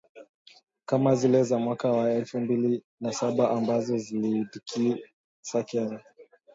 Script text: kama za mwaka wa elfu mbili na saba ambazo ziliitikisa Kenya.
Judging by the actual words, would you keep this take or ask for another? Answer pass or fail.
fail